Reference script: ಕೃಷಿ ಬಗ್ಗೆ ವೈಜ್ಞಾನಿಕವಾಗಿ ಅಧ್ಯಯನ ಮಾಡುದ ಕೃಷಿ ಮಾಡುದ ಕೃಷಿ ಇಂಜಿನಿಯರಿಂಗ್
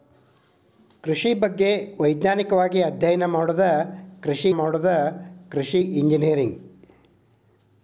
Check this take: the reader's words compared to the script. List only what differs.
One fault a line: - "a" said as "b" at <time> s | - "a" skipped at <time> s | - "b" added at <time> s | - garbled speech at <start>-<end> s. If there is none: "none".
none